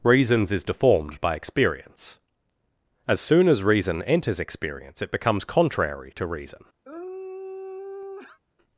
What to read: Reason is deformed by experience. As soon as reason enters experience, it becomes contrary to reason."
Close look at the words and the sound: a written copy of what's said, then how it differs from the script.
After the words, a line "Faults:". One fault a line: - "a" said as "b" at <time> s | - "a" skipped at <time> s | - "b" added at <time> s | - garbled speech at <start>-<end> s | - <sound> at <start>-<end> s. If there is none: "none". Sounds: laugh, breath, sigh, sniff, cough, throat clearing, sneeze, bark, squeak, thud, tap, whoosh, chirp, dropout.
Reasons is deformed by experience. As soon as reason enters experience, it becomes contrary to reason."
Faults:
- "Reason" said as "Reasons" at 0.0 s
- sigh at 6.8-8.4 s